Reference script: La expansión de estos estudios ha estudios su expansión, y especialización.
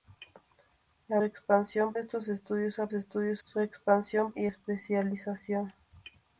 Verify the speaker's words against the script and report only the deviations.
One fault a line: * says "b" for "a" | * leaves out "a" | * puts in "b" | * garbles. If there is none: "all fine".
all fine